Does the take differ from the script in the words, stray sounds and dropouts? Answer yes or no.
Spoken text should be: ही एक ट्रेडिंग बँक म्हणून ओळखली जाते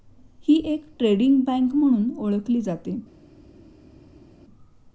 no